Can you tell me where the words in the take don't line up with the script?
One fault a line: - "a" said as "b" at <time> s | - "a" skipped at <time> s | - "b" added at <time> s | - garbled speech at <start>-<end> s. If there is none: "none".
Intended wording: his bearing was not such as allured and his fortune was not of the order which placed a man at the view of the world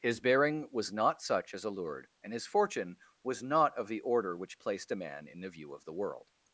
- "at" said as "in" at 5.3 s